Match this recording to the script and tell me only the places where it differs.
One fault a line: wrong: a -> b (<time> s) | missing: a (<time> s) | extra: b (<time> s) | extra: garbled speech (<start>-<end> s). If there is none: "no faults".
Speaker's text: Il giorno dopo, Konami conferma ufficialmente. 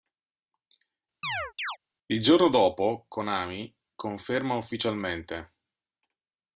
no faults